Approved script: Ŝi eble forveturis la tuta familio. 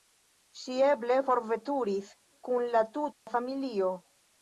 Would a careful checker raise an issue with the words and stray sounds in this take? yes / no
yes